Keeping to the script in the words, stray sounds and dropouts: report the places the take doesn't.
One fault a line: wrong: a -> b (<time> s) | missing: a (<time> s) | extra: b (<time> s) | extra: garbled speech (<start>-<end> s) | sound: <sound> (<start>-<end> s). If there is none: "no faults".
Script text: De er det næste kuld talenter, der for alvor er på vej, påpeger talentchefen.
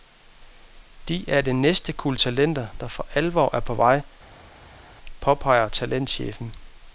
no faults